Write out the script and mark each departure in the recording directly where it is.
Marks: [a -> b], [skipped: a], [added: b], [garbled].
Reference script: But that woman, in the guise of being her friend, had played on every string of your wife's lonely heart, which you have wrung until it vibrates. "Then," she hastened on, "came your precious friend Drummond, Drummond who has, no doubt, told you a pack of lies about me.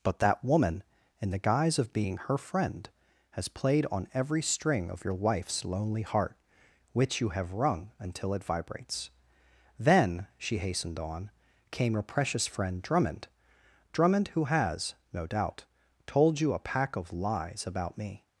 But that woman, in the guise of being her friend, [had -> has] played on every string of your wife's lonely heart, which you have wrung until it vibrates. "Then," she hastened on, "came your precious friend Drummond, Drummond who has, no doubt, told you a pack of lies about me.